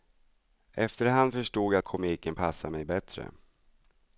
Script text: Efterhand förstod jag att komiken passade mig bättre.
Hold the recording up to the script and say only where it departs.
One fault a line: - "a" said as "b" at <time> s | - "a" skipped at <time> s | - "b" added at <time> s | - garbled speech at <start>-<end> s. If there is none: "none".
none